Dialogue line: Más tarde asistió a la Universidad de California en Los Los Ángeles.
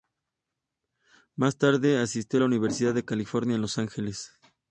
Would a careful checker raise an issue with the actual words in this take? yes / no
yes